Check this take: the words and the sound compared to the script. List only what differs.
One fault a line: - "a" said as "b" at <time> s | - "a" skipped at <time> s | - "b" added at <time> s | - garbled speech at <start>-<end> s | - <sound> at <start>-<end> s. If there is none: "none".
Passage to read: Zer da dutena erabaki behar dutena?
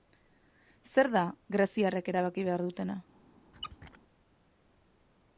- "dutena" said as "greziarrek" at 1.6 s
- squeak at 3.5-4.0 s